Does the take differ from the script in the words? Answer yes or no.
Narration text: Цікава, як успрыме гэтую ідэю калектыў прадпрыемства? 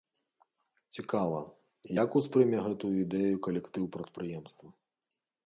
no